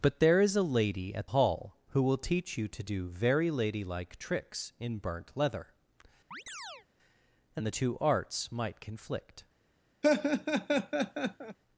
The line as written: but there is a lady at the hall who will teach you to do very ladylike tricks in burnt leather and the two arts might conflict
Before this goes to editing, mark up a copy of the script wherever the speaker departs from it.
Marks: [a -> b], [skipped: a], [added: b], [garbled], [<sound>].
but there is a lady at [skipped: the] hall who will teach you to do very ladylike tricks in burnt leather [chirp] and the two arts might conflict [laugh]